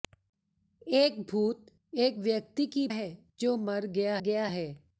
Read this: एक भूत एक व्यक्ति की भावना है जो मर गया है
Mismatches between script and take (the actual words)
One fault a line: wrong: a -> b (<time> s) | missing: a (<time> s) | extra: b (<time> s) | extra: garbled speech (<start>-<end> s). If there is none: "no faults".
missing: भावना (2.9 s)
extra: गया (4.2 s)